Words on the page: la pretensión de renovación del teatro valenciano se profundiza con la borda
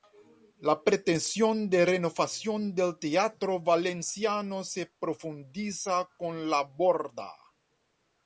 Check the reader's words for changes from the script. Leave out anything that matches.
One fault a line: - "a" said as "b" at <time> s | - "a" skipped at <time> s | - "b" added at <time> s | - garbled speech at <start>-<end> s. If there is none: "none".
none